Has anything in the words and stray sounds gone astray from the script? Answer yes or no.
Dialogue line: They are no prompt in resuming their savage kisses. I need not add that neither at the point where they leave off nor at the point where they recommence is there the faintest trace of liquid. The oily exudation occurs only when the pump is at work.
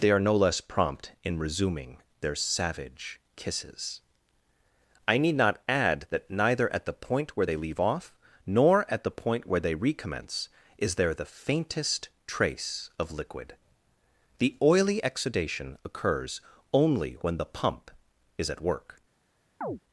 yes